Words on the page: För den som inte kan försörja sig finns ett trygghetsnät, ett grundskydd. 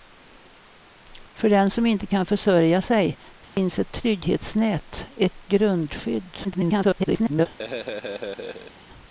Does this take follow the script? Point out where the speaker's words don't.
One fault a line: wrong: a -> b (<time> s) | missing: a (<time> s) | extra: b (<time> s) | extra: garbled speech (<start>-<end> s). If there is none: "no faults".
extra: garbled speech (6.4-7.5 s)